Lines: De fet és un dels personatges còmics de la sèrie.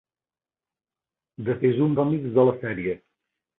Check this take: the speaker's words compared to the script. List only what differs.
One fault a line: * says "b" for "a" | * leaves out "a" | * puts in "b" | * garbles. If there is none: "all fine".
* leaves out "fet"
* leaves out "dels personatges"